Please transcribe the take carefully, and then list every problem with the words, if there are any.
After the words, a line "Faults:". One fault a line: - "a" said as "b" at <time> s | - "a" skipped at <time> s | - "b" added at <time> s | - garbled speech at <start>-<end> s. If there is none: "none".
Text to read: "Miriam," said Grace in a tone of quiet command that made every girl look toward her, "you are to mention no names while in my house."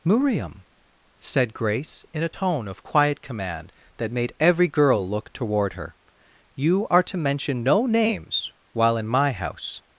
"Miriam," said Grace in a tone of quiet command that made every girl look toward her, "you are to mention no names while in my house."
Faults:
none